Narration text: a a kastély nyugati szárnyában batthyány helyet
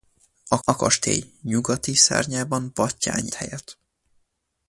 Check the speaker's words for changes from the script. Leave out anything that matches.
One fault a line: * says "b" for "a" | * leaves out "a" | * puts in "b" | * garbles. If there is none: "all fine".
all fine